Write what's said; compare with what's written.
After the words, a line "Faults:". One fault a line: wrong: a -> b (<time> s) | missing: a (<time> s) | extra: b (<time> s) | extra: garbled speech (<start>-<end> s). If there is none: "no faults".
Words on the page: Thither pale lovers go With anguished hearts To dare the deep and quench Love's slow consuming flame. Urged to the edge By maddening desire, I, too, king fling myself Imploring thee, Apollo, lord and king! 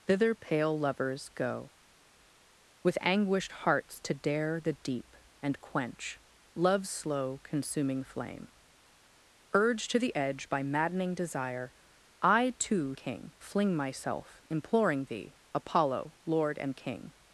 Thither pale lovers go With anguished hearts To dare the deep and quench Love's slow consuming flame. Urged to the edge By maddening desire, I, too, king fling myself Imploring thee, Apollo, lord and king!
Faults:
no faults